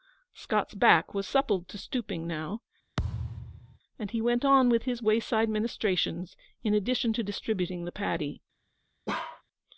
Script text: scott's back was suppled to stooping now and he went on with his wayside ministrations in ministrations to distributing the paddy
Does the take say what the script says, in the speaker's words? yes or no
no